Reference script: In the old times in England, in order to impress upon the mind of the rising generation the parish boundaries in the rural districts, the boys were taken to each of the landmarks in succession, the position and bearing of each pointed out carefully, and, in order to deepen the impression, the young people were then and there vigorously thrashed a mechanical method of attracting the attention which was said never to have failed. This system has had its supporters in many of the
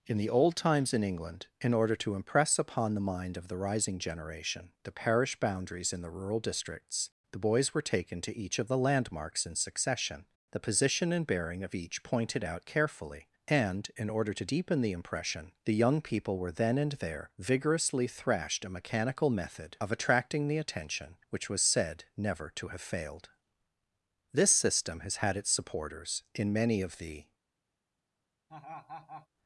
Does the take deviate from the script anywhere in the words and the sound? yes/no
yes